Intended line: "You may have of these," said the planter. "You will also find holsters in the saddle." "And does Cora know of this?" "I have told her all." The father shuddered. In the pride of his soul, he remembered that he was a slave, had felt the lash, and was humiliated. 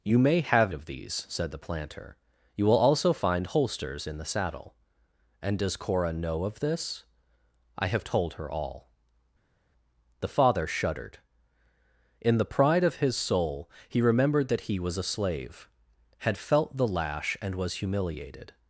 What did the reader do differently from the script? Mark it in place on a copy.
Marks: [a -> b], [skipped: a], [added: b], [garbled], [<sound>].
"You may have of these," said the planter. "You will also find holsters in the saddle." "And does Cora know of this?" "I have told her all." The father shuddered. In the pride of his soul, he remembered that he was a slave, had felt the lash, and was humiliated.